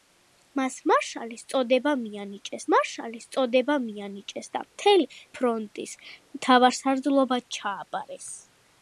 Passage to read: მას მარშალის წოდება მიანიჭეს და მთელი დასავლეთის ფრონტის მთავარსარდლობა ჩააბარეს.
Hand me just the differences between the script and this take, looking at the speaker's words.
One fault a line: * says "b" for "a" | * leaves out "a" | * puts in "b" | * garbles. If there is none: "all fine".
* puts in "მარშალის წოდება მიანიჭეს"
* leaves out "დასავლეთის"